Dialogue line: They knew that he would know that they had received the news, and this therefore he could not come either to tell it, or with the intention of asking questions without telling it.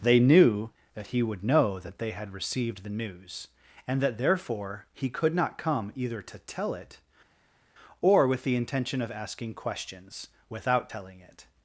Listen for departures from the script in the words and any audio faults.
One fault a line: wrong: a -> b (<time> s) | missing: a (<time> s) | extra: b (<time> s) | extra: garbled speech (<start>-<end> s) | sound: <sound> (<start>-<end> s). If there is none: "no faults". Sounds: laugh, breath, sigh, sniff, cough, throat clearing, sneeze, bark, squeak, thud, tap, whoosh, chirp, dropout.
wrong: this -> that (4.0 s)